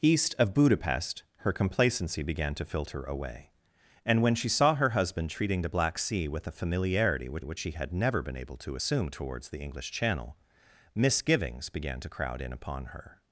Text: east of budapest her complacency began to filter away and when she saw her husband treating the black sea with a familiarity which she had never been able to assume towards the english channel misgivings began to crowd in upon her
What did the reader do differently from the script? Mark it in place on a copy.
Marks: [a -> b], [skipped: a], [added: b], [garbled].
east of budapest her complacency began to filter away and when she saw her husband treating the black sea with a familiarity which [added: which] she had never been able to assume towards the english channel misgivings began to crowd in upon her